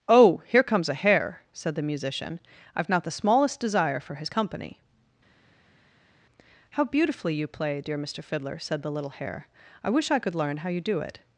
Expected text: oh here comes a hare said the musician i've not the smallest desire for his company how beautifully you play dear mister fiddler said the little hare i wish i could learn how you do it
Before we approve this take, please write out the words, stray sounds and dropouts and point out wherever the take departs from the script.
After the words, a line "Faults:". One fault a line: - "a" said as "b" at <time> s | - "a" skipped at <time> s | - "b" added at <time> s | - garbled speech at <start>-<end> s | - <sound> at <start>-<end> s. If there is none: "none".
oh here comes a hare said the musician i've not the smallest desire for his company how beautifully you play dear mister fiddler said the little hare i wish i could learn how you do it
Faults:
none